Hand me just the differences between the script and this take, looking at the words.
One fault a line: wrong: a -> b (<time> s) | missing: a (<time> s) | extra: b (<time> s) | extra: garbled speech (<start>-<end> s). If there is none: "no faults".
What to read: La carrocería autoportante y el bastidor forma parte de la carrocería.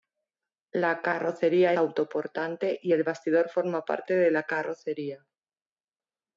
no faults